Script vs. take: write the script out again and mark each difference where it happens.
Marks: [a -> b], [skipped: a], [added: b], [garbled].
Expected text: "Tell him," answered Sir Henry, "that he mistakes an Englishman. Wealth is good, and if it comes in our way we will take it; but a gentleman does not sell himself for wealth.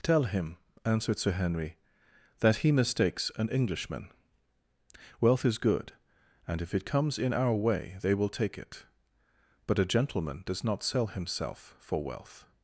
"Tell him," answered Sir Henry, "that he mistakes an Englishman. Wealth is good, and if it comes in our way [we -> they] will take it; but a gentleman does not sell himself for wealth.